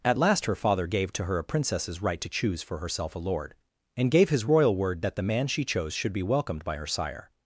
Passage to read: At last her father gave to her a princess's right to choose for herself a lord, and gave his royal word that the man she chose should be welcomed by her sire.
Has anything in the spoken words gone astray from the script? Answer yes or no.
no